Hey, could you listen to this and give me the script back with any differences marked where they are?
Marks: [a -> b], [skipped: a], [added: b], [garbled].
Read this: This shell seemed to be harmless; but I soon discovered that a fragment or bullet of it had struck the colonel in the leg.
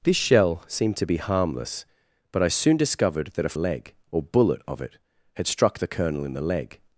This shell seemed to be harmless; but I soon discovered that a [fragment -> leg] or bullet of it had struck the colonel in the leg.